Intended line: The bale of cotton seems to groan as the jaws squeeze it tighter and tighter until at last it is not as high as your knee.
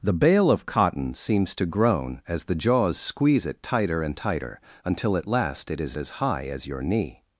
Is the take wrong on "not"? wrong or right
wrong